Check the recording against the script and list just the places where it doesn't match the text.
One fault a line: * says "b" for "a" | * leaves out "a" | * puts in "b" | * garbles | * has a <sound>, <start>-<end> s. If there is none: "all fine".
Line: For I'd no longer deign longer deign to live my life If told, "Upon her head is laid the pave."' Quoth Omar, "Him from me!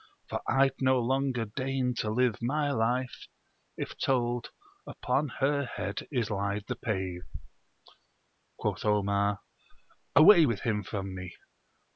* leaves out "longer deign"
* puts in "Away with"